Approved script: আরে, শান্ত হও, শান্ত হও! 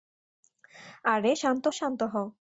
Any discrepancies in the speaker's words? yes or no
yes